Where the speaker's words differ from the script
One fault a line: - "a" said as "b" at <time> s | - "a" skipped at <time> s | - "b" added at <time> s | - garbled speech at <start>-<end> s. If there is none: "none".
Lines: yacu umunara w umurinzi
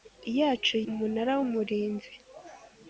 none